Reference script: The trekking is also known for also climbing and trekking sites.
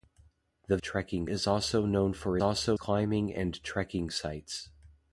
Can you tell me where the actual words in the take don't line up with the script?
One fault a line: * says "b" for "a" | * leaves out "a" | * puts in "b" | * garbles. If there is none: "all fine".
all fine